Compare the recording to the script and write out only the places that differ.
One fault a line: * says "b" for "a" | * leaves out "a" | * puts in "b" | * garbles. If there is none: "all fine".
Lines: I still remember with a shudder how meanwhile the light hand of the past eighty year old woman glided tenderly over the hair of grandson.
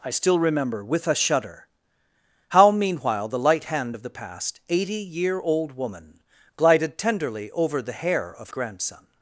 all fine